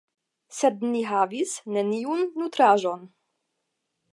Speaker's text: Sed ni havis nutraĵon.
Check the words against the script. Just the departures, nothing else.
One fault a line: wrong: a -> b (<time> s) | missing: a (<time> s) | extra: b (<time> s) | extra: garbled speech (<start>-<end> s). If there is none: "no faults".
extra: neniun (1.8 s)